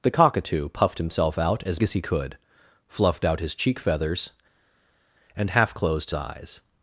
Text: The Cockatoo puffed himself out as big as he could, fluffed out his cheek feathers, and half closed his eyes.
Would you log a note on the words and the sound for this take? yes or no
yes